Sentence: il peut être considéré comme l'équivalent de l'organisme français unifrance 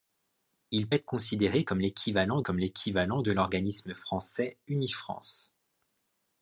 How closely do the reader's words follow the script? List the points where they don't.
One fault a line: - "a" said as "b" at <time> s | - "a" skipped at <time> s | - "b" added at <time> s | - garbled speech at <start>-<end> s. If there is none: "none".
- "peut" skipped at 0.9 s
- "comme l'équivalent" added at 2.4 s